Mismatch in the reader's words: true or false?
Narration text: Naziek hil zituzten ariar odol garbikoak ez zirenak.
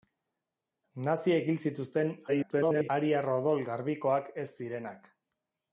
true